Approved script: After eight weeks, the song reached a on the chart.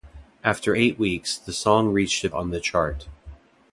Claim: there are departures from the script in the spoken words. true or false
false